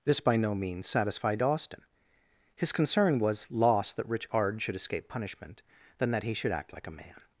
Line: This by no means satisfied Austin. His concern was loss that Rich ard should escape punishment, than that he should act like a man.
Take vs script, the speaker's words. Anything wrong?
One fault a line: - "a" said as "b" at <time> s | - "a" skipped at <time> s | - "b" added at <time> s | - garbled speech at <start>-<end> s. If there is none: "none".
none